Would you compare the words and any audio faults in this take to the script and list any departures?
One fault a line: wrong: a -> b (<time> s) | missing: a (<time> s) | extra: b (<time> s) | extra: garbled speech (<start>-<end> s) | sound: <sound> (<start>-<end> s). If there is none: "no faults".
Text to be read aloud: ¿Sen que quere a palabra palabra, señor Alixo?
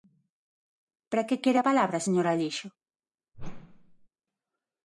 wrong: Sen -> Para (1.1 s)
missing: palabra (2.1 s)
sound: whoosh (3.3-4.1 s)